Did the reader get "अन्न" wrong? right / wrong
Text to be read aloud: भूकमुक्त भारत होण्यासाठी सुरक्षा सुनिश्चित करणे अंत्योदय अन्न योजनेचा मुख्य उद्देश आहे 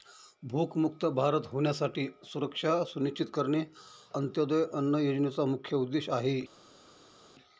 right